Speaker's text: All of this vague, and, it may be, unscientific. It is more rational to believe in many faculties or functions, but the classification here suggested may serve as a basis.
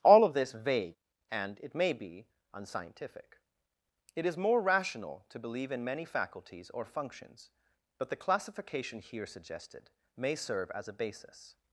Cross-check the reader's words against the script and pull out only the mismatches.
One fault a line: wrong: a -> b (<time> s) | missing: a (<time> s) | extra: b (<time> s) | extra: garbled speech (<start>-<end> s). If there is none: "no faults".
no faults